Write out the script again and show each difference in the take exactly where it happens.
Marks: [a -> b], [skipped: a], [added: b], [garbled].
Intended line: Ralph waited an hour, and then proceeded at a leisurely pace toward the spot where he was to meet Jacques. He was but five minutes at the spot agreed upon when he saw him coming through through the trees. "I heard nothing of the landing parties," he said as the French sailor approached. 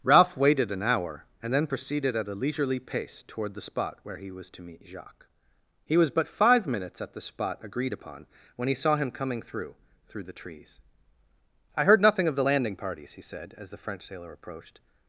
Ralph waited an hour, and then proceeded at a leisurely pace toward the spot where he was to meet Jacques. He was but five minutes at the spot agreed upon when he saw him coming through through the trees. "I heard nothing of the landing parties," he said as the French sailor approached.